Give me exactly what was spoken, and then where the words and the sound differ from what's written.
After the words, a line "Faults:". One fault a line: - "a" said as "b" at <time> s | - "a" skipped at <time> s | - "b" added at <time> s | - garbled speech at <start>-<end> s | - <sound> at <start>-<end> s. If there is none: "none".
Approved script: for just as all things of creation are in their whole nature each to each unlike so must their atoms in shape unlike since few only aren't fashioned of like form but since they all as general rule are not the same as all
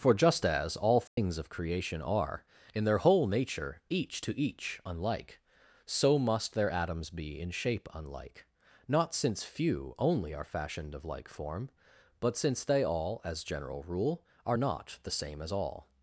for just as all things of creation are in their whole nature each to each unlike so must their atoms be in shape unlike not since few only are fashioned of like form but since they all as general rule are not the same as all
Faults:
- dropout at 1.1-1.2 s
- "be" added at 7.1 s
- "not" added at 8.9 s
- "aren't" said as "are" at 10.3 s